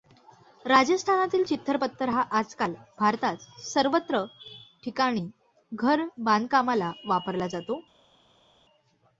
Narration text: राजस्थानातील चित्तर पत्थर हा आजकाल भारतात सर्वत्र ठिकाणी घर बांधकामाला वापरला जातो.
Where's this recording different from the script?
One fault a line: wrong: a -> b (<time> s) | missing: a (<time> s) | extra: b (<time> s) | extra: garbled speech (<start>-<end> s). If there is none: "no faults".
no faults